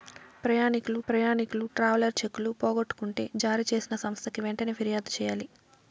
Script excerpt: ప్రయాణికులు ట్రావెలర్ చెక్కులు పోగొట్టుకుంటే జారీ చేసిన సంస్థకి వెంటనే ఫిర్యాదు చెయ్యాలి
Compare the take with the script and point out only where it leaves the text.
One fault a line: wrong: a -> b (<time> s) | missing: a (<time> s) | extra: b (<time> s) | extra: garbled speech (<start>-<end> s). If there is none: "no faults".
extra: ప్రయాణికులు (1.1 s)